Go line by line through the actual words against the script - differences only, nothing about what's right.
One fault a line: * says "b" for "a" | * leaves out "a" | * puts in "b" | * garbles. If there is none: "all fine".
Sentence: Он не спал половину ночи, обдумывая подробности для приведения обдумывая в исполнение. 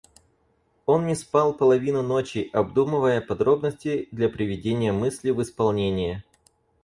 * says "мысли" for "обдумывая"